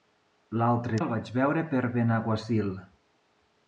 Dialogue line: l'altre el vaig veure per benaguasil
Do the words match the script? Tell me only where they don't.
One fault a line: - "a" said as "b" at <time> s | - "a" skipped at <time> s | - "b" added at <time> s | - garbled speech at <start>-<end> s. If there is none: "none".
none